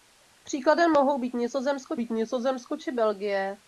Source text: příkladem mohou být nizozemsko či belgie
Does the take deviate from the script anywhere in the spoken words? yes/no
yes